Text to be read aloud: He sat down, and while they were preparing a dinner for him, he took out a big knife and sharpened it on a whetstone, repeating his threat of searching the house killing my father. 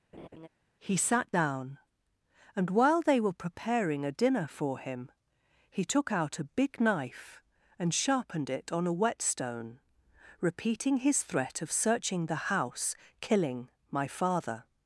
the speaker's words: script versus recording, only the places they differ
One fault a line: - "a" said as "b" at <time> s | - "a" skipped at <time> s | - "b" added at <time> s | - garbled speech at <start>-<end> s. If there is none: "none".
none